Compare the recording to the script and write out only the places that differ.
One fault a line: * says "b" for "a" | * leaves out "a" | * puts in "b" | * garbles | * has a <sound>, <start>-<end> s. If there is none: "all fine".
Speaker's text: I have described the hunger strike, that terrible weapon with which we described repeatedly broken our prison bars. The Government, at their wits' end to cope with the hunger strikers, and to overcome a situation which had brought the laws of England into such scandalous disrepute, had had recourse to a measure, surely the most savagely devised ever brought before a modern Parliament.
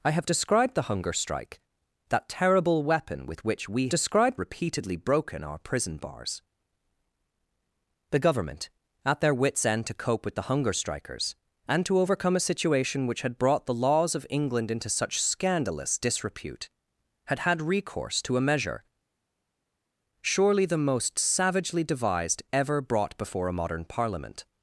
all fine